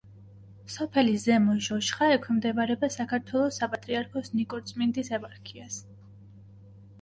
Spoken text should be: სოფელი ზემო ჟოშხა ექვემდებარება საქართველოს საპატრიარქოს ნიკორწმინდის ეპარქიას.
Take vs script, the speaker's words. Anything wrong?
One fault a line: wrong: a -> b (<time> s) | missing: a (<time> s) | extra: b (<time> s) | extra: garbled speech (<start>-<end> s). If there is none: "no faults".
no faults